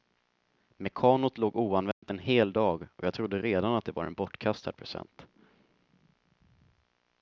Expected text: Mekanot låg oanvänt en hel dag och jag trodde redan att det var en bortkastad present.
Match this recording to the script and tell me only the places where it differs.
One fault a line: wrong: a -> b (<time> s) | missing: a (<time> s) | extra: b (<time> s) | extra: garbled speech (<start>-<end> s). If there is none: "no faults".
no faults